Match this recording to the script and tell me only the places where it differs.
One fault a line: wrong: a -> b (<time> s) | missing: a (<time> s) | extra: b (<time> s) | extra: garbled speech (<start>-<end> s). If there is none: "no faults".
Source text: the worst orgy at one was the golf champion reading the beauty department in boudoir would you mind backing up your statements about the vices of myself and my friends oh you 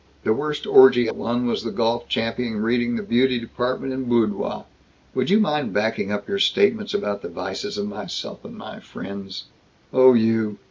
no faults